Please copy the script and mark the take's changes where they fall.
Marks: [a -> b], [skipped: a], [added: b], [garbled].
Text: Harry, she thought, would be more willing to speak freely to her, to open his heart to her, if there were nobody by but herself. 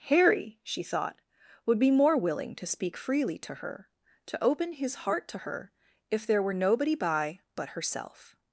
Harry, she thought, would be more willing to speak freely to her, to open his heart to her, if there were nobody by but herself.